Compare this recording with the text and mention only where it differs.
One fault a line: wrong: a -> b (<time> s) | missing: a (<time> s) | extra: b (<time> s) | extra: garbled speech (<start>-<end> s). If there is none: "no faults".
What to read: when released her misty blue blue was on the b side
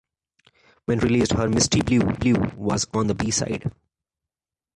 no faults